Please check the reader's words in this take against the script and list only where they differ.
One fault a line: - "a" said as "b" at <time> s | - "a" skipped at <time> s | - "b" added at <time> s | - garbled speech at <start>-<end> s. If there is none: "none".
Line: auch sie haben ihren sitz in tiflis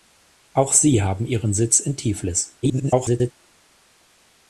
- garbled speech at 2.6-3.3 s